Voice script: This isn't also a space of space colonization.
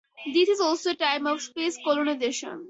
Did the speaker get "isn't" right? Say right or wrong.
wrong